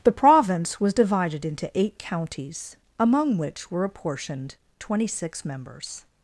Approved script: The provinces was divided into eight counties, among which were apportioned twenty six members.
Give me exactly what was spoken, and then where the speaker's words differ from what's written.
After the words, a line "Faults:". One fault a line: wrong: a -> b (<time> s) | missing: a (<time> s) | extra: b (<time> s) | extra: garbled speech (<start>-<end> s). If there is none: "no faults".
The province was divided into eight counties, among which were apportioned twenty six members.
Faults:
wrong: provinces -> province (0.1 s)